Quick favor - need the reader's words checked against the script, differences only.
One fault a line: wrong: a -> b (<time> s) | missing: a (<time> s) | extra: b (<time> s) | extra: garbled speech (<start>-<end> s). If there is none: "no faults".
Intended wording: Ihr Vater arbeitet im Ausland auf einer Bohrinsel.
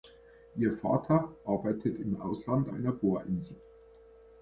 missing: auf (2.7 s)